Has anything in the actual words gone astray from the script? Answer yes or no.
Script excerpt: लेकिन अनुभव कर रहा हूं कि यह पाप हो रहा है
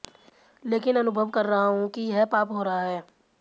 no